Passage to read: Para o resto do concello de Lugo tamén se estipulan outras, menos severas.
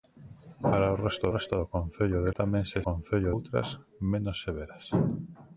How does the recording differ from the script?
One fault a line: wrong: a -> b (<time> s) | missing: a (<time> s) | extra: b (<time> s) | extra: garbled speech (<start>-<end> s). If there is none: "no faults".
extra: resto (1.3 s)
missing: Lugo (2.3 s)
wrong: estipulan -> concello (2.9 s)